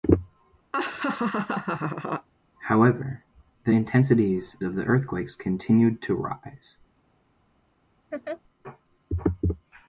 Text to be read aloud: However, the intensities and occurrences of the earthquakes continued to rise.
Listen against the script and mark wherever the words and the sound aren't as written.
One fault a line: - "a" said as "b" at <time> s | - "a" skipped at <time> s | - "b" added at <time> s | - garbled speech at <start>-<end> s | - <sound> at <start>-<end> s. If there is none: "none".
- laugh at 0.7-2.3 s
- "and occurrences" skipped at 4.6 s
- laugh at 8.1-8.4 s